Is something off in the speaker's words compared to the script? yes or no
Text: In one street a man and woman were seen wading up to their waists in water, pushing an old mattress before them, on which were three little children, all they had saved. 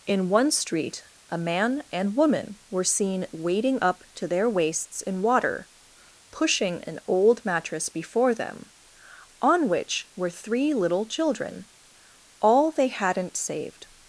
yes